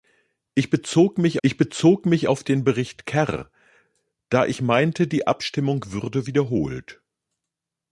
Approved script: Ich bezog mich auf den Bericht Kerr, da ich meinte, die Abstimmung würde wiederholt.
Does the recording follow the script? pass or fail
fail